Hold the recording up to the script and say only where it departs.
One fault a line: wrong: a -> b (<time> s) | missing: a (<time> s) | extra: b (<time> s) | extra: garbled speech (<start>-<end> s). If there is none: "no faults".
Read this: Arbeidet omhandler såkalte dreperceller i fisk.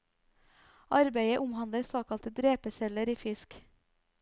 no faults